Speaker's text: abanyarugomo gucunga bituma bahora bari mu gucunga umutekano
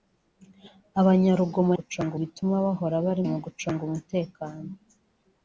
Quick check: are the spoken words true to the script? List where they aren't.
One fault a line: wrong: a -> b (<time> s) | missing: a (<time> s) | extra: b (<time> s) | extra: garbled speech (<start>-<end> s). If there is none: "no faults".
no faults